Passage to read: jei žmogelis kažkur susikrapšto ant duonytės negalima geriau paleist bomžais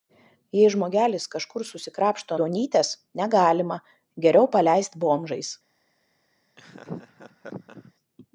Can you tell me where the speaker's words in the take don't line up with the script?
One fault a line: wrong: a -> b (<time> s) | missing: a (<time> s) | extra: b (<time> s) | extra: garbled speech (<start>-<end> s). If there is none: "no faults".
missing: ant (2.4 s)